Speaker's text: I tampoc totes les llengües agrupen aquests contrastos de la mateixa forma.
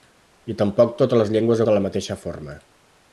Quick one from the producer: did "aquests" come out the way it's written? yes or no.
no